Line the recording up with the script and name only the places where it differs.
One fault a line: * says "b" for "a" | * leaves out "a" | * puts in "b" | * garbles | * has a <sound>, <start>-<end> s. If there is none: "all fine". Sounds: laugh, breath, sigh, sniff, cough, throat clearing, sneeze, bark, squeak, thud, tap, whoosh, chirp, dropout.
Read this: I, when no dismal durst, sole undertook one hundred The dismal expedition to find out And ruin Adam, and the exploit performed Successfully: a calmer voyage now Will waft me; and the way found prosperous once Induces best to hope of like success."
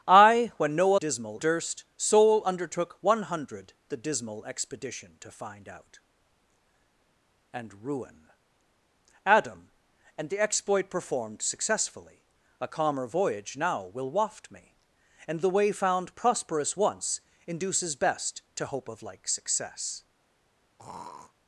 * has a throat clearing, 20.8-21.3 s